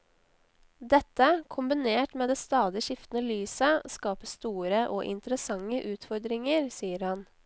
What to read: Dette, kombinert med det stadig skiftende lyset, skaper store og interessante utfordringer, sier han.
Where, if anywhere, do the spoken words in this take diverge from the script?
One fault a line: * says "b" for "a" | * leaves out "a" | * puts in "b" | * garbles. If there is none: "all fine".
all fine